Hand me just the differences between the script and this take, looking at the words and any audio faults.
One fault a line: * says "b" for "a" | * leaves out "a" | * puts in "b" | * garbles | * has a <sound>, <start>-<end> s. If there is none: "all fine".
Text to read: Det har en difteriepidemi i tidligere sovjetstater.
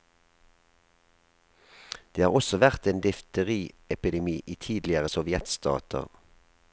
* puts in "også vært"